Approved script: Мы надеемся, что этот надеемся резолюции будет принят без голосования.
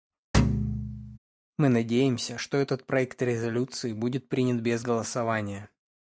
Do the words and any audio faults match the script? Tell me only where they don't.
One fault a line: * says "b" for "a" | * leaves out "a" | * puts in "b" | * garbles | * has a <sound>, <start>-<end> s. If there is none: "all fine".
* has a thud, 0.3-1.2 s
* says "проект" for "надеемся"